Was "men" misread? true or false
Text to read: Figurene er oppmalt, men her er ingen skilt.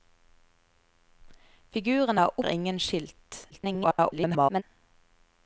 true